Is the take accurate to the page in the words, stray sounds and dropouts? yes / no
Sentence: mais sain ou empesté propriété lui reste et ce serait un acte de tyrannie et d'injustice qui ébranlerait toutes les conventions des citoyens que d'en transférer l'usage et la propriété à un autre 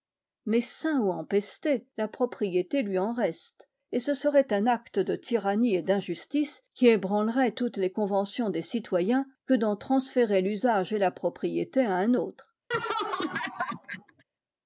no